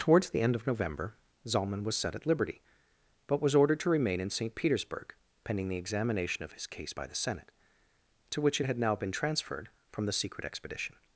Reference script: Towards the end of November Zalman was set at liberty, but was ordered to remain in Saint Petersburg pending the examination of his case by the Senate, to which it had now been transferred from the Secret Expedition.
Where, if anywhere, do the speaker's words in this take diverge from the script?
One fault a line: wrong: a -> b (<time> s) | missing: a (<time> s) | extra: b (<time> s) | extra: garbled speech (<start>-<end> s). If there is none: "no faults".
no faults